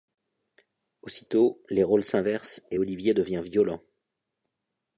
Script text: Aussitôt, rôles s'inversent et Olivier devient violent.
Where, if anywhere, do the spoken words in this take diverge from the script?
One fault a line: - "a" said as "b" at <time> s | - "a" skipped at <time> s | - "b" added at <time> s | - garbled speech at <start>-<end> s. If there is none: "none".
- "les" added at 1.7 s